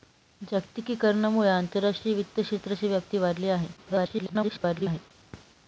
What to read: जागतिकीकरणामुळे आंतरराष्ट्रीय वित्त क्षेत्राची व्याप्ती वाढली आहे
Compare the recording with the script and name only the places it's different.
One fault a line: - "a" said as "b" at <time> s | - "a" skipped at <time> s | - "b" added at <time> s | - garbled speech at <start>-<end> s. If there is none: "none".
- garbled speech at 3.8-5.1 s